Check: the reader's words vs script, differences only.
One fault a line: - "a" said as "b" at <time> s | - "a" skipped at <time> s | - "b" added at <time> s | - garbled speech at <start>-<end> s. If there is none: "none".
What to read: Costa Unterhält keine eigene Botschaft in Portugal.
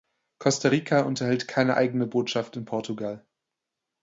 - "Rica" added at 0.7 s